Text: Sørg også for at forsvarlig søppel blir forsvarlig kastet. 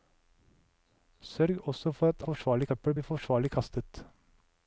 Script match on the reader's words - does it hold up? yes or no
yes